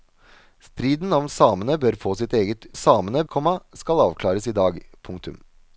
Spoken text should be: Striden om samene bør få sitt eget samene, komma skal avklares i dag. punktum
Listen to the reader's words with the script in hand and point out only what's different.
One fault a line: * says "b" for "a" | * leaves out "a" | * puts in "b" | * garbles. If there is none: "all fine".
all fine